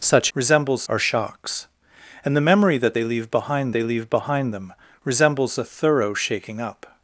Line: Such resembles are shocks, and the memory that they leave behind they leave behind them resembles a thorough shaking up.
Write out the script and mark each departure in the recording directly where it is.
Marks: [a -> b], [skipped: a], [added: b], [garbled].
Such resembles are shocks, and the memory that they leave behind they leave behind them resembles a thorough shaking up.